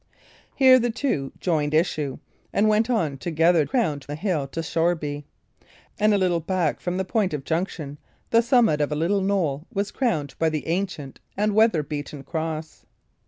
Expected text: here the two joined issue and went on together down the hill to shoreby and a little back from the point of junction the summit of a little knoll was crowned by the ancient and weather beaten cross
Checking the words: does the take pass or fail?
fail